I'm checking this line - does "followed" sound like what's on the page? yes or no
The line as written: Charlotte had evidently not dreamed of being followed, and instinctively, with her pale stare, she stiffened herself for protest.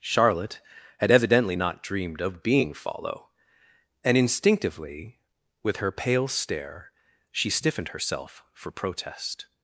no